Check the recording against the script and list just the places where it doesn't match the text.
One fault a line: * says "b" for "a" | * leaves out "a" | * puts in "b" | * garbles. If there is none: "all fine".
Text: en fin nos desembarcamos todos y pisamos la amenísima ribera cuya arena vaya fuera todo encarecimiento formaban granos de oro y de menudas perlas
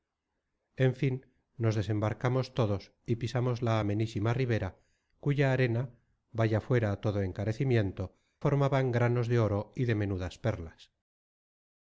all fine